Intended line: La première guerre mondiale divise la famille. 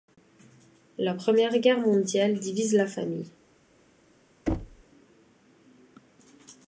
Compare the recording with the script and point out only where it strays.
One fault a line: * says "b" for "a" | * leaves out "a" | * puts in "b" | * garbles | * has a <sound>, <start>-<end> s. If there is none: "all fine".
* has a thud, 4.5-4.8 s